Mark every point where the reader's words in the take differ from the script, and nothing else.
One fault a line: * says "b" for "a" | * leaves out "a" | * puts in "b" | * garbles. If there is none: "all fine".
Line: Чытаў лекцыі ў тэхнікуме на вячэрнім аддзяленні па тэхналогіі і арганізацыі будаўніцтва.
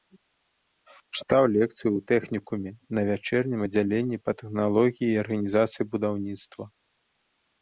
all fine